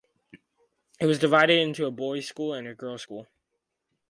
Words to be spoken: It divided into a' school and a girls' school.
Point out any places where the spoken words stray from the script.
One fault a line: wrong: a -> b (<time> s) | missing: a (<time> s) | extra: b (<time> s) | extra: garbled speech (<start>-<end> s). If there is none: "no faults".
extra: was (1.1 s)
extra: boys (1.9 s)